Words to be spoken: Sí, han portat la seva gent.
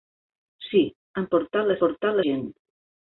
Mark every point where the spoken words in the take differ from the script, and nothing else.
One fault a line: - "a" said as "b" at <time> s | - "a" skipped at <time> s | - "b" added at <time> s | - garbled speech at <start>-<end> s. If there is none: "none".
- "seva" said as "portat" at 1.8 s